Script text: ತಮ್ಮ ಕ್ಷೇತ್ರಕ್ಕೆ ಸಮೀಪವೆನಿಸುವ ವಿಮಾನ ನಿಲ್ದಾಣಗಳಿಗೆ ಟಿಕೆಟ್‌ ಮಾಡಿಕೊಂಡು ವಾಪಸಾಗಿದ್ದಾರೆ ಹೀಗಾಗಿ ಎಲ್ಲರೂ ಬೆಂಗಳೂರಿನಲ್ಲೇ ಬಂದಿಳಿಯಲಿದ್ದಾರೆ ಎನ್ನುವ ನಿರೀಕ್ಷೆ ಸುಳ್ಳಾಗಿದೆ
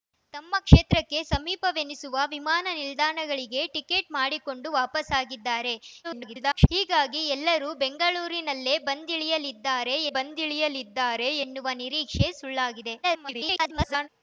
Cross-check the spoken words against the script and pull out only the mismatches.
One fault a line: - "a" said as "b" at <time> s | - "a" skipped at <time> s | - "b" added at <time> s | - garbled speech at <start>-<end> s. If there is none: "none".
- garbled speech at 6.0-6.7 s
- "ಬಂದಿಳಿಯಲಿದ್ದಾರೆ" added at 10.2 s
- garbled speech at 13.0-14.1 s